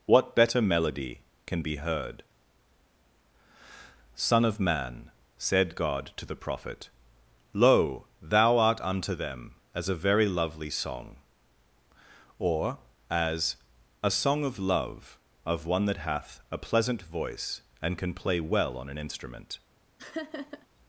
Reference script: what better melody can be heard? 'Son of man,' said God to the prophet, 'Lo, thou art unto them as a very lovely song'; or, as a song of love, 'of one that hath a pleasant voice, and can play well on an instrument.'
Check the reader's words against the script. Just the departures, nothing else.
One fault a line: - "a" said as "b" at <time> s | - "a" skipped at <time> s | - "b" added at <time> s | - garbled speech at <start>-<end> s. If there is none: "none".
none